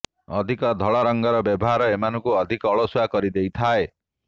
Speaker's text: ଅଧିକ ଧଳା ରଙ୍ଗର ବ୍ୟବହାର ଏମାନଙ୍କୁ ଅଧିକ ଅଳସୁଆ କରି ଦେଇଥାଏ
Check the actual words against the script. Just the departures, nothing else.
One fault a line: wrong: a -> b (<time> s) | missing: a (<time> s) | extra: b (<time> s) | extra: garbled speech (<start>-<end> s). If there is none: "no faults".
no faults